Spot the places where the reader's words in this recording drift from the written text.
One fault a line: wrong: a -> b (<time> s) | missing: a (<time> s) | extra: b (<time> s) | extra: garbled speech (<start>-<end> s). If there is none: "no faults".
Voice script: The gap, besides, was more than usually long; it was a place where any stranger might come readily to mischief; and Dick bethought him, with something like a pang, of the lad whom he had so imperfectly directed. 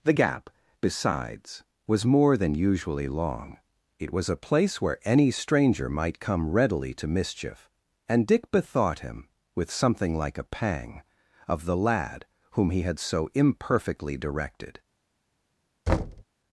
no faults